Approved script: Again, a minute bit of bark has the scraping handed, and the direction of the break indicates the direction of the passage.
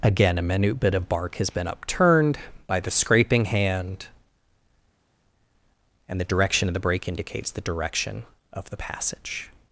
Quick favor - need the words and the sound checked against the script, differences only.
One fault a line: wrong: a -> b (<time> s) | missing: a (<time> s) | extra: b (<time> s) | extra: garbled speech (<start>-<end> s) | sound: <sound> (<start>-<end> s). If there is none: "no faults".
extra: been upturned by (1.5 s)
wrong: handed -> hand (3.5 s)